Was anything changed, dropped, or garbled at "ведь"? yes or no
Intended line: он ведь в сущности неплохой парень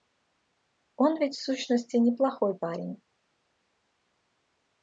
no